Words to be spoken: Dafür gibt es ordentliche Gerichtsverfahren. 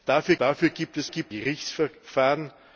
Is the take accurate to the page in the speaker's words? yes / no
no